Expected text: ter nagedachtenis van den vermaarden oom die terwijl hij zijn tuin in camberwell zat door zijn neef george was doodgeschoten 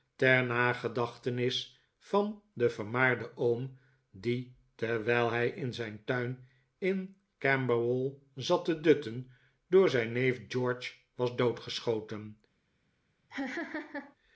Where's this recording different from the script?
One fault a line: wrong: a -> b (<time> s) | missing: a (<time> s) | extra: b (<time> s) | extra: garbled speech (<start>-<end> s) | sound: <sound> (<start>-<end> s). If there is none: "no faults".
extra: in (5.5 s)
extra: te dutten (8.6 s)
sound: laugh (13.3-14.2 s)